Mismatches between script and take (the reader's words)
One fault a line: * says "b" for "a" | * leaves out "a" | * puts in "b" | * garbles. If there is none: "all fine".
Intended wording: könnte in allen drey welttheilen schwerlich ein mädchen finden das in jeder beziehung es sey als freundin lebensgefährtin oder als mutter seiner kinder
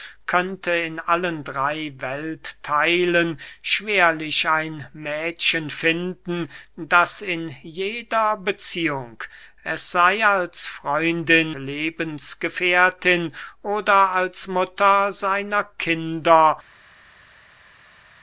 all fine